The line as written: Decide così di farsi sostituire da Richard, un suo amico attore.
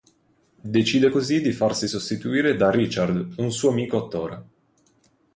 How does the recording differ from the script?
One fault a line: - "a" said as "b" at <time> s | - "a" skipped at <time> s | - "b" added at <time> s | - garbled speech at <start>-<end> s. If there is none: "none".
none